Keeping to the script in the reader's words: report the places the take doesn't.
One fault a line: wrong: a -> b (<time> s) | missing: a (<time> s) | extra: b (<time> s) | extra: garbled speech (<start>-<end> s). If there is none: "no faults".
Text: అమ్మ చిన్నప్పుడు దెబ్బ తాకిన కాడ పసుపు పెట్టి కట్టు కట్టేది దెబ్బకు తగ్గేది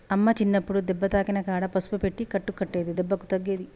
no faults